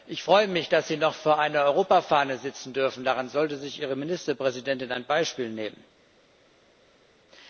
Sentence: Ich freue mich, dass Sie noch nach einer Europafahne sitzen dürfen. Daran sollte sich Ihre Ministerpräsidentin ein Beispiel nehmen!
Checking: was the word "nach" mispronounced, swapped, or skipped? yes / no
yes